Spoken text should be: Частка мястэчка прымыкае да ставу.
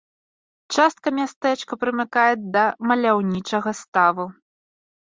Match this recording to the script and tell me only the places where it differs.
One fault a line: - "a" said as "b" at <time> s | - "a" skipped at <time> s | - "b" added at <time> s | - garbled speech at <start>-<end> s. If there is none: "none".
- "маляўнічага" added at 2.9 s